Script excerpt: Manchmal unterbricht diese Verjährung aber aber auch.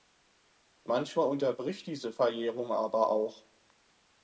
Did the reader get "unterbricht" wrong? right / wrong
right